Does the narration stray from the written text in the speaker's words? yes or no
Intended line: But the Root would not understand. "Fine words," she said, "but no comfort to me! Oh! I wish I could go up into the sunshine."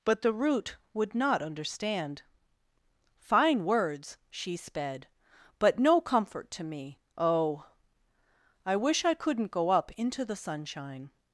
yes